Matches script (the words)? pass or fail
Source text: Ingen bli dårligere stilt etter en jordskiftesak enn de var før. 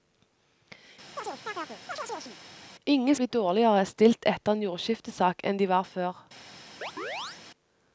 pass